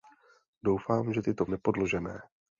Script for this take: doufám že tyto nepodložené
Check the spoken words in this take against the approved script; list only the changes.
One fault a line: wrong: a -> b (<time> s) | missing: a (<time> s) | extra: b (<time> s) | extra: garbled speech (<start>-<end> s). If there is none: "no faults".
no faults